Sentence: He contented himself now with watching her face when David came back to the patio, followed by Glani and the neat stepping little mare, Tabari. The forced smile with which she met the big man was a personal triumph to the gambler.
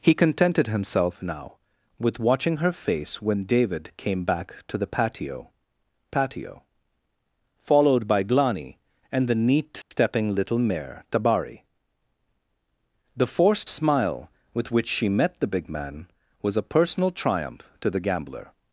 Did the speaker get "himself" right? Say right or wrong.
right